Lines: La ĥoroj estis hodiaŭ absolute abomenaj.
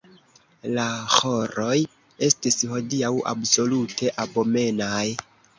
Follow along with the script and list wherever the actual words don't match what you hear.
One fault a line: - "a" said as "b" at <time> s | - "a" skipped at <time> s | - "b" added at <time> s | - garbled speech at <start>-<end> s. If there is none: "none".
none